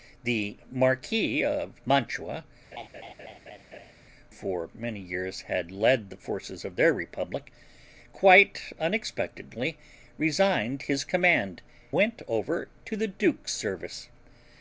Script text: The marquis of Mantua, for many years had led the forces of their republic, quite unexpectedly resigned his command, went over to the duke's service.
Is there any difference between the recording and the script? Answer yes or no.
no